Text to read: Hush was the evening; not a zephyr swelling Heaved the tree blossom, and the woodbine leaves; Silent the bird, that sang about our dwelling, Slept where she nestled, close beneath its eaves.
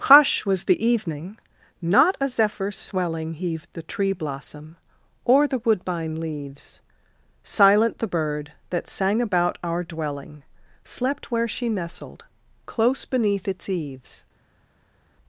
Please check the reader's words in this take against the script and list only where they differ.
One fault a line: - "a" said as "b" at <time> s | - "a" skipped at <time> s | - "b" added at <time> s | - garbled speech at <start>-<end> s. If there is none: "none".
- "and" said as "or" at 5.2 s